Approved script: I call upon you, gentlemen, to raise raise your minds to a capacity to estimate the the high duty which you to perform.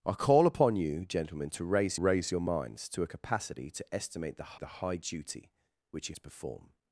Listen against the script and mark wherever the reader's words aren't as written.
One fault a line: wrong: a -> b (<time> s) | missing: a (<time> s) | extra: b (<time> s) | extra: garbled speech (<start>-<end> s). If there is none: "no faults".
no faults